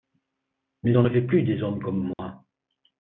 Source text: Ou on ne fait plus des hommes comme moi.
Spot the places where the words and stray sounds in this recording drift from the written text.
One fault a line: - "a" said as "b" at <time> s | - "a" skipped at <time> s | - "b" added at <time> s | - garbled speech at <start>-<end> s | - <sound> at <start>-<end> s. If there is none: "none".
- "Ou" said as "Mais" at 0.8 s
- dropout at 2.1-2.2 s